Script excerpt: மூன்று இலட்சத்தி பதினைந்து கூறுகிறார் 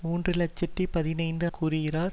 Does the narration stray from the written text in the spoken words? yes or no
no